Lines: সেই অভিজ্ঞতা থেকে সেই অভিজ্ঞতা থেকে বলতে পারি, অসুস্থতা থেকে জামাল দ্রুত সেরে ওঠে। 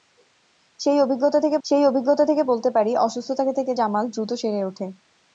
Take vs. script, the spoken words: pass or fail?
pass